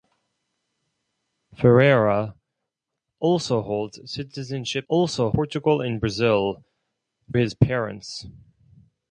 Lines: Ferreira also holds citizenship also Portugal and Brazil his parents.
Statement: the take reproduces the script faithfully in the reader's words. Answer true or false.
true